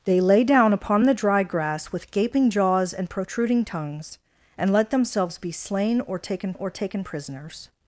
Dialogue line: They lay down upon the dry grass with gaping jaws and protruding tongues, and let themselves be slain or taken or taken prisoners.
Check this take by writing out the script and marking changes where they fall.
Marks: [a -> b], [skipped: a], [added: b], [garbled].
They lay down upon the dry grass with gaping jaws and protruding tongues, and let themselves be slain or taken or taken prisoners.